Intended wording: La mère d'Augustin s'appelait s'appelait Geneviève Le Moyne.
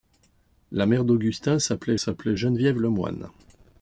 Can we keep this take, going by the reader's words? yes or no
yes